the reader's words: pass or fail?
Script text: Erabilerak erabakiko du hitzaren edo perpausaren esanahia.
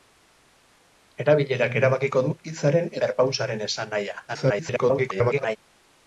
fail